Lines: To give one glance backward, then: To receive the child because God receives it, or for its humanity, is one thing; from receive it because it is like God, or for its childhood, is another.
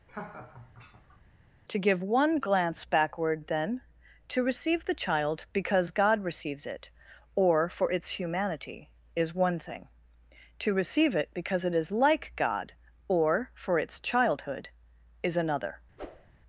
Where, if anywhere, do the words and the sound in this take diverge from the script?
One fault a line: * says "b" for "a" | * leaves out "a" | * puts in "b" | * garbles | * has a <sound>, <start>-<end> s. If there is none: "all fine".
* has a laugh, 0.1-1.2 s
* says "to" for "from"
* has a whoosh, 16.0-16.3 s